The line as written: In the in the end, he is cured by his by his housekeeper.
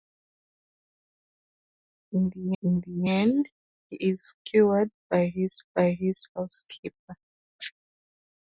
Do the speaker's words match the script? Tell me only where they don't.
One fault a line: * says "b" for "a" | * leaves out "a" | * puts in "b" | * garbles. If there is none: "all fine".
all fine